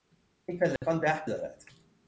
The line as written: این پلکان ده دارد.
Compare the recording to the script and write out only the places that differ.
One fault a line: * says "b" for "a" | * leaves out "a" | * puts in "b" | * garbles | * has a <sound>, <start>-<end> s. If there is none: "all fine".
* has a dropout, 0.8-0.8 s